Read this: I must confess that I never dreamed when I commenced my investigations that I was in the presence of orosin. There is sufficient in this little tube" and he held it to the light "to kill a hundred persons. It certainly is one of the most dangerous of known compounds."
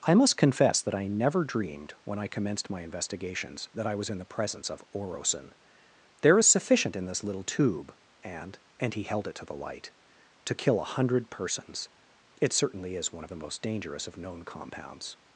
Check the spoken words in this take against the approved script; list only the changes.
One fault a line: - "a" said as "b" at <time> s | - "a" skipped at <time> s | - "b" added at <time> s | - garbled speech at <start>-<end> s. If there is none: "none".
- "and" added at 8.8 s